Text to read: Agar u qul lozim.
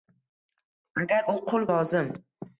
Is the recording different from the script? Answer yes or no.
no